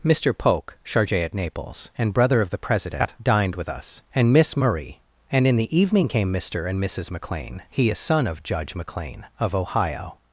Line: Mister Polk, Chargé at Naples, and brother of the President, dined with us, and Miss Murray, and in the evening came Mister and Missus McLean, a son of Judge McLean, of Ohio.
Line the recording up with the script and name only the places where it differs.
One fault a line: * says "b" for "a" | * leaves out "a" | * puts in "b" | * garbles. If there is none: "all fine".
* puts in "he"